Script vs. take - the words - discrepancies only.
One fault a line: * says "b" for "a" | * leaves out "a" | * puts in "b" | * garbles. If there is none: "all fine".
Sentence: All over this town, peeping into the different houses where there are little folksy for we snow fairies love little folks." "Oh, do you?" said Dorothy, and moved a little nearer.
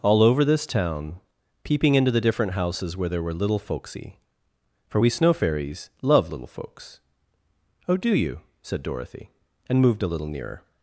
* says "were" for "are"